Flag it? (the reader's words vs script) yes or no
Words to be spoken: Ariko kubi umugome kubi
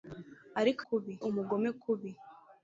no